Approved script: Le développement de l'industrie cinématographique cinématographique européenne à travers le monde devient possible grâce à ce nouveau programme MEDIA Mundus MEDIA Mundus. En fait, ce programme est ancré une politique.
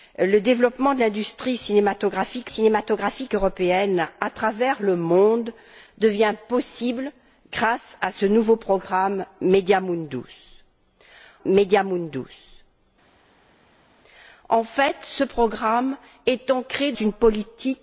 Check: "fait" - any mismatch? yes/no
no